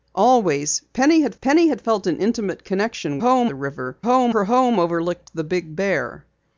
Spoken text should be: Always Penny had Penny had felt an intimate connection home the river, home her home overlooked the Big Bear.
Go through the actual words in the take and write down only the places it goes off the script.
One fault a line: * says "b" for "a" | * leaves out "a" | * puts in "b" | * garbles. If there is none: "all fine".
all fine